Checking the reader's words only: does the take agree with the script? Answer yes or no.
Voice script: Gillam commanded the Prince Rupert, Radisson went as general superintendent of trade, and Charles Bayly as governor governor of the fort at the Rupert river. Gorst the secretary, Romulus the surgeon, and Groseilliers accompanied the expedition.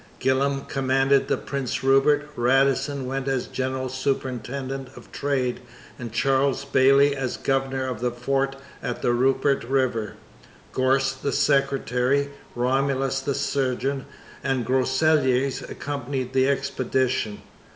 no